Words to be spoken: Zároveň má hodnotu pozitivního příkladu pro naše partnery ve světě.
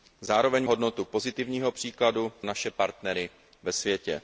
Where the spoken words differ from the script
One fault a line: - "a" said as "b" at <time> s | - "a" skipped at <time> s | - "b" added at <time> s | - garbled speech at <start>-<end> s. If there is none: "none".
- "má" skipped at 0.7 s
- "pro" skipped at 2.3 s